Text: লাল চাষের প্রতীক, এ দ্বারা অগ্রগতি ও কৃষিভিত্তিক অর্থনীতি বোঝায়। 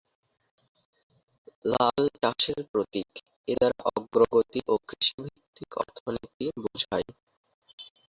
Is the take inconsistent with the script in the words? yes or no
no